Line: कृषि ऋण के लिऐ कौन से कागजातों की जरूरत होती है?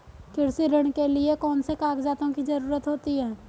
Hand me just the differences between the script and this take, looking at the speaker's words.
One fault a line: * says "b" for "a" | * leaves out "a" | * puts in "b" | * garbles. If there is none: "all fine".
all fine